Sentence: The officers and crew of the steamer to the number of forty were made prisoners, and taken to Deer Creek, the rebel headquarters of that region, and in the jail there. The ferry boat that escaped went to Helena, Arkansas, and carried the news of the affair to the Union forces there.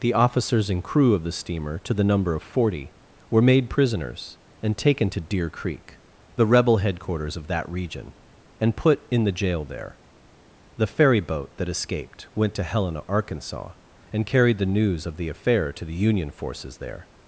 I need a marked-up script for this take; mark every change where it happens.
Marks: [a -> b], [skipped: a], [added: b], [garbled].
The officers and crew of the steamer to the number of forty were made prisoners, and taken to Deer Creek, the rebel headquarters of that region, and [added: put] in the jail there. The ferry boat that escaped went to Helena, Arkansas, and carried the news of the affair to the Union forces there.